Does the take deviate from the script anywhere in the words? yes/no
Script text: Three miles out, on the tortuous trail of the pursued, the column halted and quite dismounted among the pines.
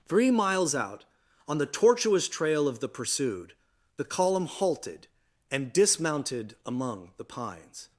yes